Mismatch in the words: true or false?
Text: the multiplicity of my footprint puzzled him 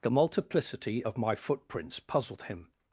true